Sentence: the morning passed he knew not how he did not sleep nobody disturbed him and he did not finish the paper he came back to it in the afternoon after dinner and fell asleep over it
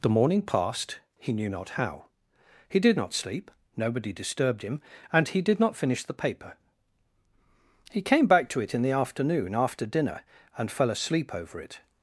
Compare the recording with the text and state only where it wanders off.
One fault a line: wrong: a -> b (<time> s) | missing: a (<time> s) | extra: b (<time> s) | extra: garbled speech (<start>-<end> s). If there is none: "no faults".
no faults